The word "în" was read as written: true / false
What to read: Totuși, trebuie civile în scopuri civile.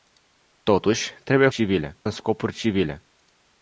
true